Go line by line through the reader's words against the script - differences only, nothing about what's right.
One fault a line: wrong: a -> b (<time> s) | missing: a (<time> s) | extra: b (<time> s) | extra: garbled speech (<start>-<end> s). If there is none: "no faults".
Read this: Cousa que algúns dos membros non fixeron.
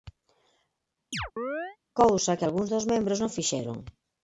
no faults